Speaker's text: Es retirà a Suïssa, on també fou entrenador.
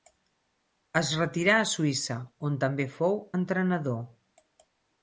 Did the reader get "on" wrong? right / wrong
right